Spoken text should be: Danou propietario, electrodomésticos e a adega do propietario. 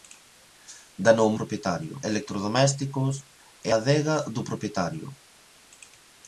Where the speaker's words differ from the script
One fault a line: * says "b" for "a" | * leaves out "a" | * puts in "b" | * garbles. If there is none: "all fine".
all fine